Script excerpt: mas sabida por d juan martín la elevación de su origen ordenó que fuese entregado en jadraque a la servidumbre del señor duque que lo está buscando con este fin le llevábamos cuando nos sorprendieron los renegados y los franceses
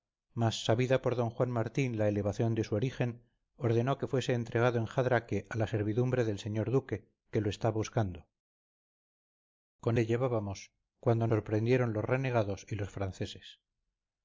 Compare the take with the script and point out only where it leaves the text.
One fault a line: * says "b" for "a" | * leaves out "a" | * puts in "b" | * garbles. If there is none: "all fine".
* leaves out "este fin"
* leaves out "nos"